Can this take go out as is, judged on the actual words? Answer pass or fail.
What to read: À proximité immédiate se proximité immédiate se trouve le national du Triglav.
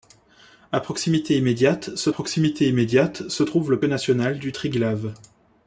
pass